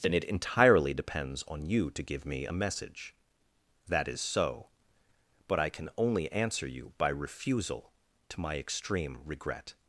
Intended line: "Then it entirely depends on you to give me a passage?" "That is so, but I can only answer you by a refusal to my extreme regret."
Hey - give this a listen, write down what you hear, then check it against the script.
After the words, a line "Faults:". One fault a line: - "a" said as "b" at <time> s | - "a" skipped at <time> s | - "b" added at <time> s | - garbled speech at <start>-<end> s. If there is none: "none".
"Then it entirely depends on you to give me a message?" "That is so, but I can only answer you by refusal to my extreme regret."
Faults:
- "passage" said as "message" at 2.5 s
- "a" skipped at 7.1 s